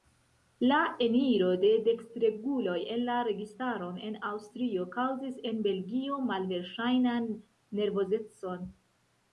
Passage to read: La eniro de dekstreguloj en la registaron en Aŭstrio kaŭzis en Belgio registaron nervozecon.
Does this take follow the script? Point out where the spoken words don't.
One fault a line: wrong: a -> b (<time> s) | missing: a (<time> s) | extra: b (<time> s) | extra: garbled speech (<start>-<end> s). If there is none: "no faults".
wrong: registaron -> malverŝajnan (6.3 s)